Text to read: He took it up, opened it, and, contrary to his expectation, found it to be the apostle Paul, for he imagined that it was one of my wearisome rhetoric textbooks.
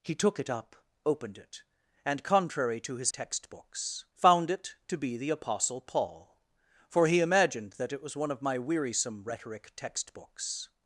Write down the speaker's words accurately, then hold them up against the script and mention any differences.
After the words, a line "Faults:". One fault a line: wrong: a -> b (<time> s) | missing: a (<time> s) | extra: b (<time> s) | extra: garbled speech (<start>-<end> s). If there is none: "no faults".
He took it up, opened it, and, contrary to his textbooks, found it to be the apostle Paul, for he imagined that it was one of my wearisome rhetoric textbooks.
Faults:
wrong: expectation -> textbooks (3.1 s)